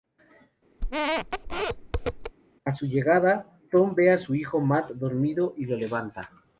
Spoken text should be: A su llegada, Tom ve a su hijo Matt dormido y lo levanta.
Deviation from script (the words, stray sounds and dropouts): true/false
true